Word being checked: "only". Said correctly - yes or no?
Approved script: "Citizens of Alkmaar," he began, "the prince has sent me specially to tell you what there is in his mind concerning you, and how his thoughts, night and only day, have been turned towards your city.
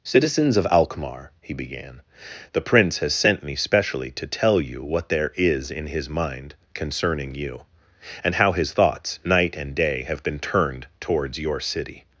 no